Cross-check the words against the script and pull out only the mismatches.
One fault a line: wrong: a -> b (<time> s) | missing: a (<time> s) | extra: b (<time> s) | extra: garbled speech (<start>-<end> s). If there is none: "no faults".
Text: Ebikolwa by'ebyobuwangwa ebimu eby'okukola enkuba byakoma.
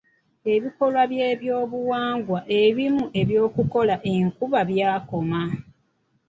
no faults